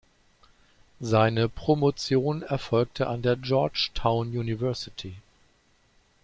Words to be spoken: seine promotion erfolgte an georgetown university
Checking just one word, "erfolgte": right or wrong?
right